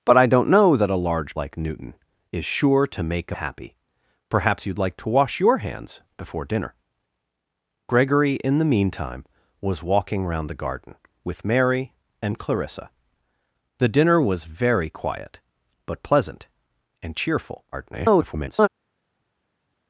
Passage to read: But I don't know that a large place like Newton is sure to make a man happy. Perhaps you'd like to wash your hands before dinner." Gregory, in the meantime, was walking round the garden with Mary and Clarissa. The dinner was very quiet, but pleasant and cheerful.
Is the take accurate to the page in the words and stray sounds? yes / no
no